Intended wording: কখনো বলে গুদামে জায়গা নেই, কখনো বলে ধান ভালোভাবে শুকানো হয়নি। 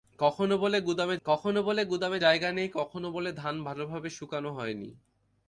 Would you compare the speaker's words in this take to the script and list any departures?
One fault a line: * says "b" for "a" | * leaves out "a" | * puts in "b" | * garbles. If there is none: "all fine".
* puts in "কখনো বলে গুদামে"